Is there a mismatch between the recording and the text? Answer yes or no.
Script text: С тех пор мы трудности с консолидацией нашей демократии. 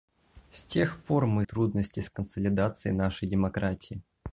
no